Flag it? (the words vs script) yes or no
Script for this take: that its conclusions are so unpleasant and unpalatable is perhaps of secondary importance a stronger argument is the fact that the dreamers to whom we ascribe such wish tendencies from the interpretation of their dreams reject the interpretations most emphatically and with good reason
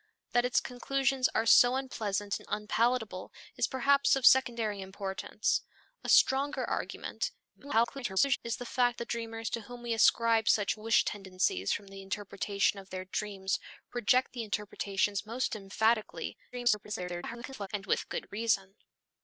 yes